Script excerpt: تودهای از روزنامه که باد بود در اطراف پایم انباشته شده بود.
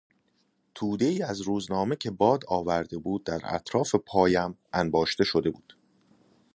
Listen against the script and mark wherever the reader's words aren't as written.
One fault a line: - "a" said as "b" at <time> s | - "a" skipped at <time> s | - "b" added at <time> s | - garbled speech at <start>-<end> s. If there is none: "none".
- "آورده" added at 2.5 s